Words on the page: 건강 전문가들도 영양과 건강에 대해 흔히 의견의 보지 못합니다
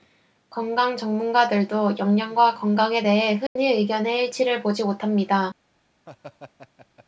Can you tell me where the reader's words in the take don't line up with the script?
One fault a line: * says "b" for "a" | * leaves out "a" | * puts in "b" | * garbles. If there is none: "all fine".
* puts in "일치를"